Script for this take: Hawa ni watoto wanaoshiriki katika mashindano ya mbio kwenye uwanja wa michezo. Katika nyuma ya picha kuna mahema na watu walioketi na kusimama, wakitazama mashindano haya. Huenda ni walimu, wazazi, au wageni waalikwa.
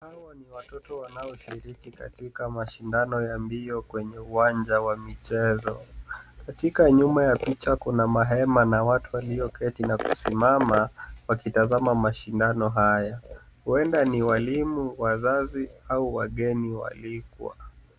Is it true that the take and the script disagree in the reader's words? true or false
false